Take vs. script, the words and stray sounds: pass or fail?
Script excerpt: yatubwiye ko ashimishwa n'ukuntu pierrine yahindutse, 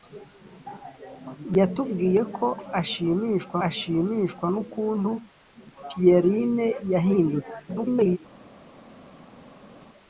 fail